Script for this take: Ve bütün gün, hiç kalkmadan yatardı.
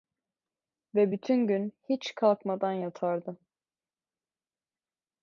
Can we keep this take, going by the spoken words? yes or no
yes